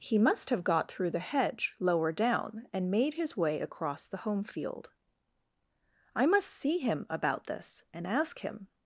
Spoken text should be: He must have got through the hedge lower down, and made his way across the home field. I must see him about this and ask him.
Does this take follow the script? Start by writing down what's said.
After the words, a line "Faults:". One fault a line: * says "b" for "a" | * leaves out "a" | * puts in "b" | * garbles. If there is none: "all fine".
He must have got through the hedge lower down, and made his way across the home field. I must see him about this and ask him.
Faults:
all fine